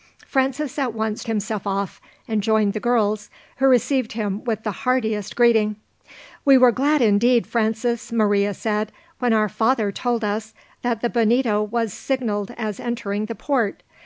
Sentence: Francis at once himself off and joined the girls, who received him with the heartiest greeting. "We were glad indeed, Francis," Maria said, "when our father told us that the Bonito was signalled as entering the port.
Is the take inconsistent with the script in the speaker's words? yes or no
no